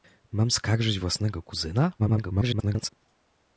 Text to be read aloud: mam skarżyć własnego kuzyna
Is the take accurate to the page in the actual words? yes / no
no